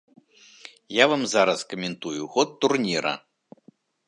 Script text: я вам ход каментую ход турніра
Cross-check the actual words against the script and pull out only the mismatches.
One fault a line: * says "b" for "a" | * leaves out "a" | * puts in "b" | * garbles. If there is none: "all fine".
* says "зараз" for "ход"